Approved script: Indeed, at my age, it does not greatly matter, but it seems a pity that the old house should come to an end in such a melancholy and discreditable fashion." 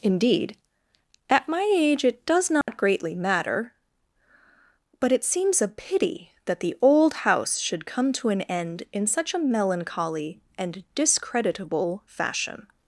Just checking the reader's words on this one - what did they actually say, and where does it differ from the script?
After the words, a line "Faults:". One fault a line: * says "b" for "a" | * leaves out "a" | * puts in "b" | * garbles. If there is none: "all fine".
Indeed, at my age, it does not greatly matter, but it seems a pity that the old house should come to an end in such a melancholy and discreditable fashion."
Faults:
all fine